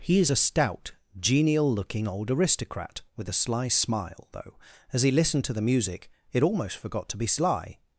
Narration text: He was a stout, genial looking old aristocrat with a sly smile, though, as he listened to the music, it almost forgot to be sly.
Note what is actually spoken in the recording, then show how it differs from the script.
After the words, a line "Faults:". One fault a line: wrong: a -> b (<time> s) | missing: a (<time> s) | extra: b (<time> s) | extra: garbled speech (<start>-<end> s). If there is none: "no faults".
He is a stout, genial looking old aristocrat with a sly smile, though, as he listened to the music, it almost forgot to be sly.
Faults:
wrong: was -> is (0.2 s)